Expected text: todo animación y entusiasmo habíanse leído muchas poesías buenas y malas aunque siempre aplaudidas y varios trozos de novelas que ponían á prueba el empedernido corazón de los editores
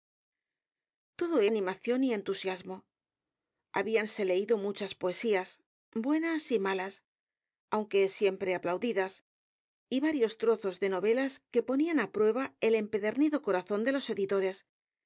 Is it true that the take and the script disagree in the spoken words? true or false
false